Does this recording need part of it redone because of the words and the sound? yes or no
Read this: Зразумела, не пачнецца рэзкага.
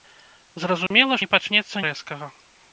yes